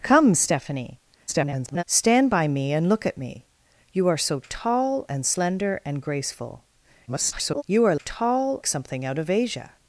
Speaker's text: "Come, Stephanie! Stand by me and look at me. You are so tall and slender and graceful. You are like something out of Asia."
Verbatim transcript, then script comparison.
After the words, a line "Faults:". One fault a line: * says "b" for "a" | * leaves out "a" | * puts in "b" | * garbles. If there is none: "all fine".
"Come, Stephanie! [garbled] Stand by me and look at me. You are so tall and slender and graceful. [garbled] You are tall something out of Asia."
Faults:
* garbles
* garbles
* says "tall" for "like"